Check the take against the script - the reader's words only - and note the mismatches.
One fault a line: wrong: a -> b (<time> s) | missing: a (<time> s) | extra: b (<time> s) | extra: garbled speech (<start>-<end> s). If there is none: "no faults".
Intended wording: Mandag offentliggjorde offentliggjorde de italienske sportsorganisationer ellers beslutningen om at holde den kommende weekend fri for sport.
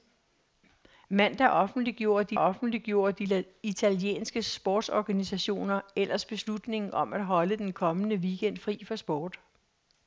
no faults